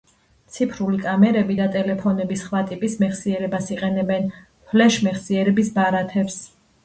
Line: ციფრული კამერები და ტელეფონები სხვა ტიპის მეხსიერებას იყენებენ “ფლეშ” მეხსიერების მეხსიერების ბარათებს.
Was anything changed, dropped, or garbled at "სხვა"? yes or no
no